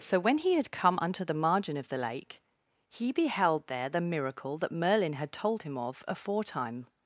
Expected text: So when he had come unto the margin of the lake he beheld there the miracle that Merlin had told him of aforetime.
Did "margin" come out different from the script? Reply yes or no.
no